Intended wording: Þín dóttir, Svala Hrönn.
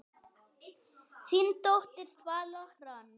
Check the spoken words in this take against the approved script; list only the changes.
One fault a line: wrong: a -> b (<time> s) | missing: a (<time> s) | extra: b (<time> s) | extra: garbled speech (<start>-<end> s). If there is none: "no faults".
no faults